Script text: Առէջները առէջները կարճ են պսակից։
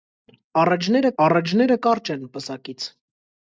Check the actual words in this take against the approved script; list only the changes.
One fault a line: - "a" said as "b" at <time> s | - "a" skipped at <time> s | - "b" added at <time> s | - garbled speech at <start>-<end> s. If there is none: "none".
none